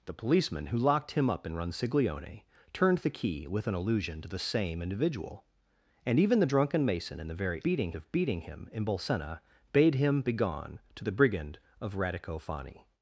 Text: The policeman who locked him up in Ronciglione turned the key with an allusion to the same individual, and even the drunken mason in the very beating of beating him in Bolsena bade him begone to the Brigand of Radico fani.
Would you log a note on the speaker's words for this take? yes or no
no